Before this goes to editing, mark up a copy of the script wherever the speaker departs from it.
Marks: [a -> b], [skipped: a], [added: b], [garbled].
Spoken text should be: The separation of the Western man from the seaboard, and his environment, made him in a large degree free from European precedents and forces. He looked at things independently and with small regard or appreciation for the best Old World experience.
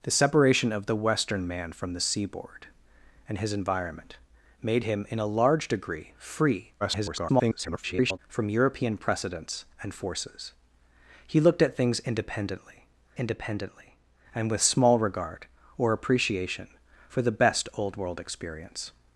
The separation of the Western man from the seaboard, and his environment, made him in a large degree free [garbled] from European precedents and forces. He looked at things independently [added: independently] and with small regard or appreciation for the best Old World experience.